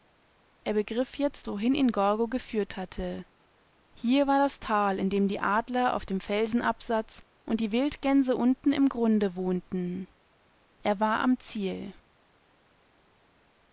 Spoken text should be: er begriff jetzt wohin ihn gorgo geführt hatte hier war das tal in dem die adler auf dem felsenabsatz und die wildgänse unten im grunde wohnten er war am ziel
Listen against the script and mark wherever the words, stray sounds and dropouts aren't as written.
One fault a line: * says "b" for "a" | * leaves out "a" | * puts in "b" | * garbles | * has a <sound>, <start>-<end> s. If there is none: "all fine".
all fine